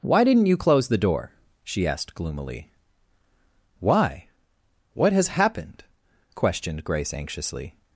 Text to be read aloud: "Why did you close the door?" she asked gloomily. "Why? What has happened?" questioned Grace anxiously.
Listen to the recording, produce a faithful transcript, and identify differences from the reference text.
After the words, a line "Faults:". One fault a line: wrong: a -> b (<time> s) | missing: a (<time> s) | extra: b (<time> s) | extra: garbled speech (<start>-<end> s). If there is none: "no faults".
"Why didn't you close the door?" she asked gloomily. "Why? What has happened?" questioned Grace anxiously.
Faults:
wrong: did -> didn't (0.2 s)